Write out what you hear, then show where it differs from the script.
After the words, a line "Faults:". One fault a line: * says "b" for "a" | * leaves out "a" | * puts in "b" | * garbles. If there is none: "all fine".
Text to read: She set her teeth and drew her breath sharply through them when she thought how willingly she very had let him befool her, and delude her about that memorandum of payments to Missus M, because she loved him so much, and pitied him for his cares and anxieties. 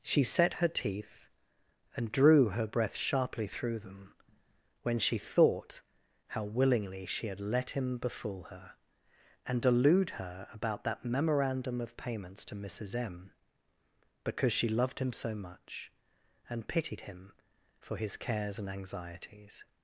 She set her teeth and drew her breath sharply through them when she thought how willingly she had let him befool her, and delude her about that memorandum of payments to Missus M, because she loved him so much, and pitied him for his cares and anxieties.
Faults:
* leaves out "very"